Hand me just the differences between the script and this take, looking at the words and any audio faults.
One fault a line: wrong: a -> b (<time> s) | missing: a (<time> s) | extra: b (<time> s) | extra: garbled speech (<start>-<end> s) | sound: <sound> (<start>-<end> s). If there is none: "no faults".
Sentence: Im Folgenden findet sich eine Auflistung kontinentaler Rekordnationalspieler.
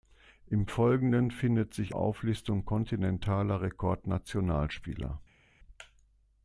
missing: eine (1.9 s)